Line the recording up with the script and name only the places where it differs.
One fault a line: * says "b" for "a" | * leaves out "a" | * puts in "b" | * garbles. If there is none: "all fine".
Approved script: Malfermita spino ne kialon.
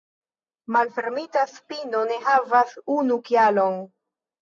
* puts in "havas unu"